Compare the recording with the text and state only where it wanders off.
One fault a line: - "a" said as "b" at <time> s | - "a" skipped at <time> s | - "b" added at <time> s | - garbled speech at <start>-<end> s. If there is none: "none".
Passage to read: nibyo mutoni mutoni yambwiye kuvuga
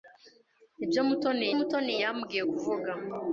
none